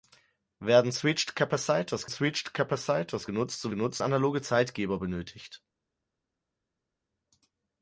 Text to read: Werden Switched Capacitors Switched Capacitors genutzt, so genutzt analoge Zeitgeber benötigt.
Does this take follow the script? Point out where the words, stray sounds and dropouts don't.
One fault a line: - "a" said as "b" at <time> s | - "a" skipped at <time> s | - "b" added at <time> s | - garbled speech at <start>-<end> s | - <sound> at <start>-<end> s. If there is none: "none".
none